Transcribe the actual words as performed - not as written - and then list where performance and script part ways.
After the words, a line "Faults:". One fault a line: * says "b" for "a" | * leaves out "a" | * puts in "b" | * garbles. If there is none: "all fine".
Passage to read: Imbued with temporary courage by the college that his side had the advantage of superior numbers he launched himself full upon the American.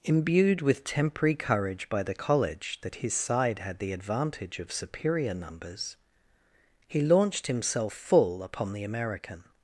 Imbued with temporary courage by the college that his side had the advantage of superior numbers he launched himself full upon the American.
Faults:
all fine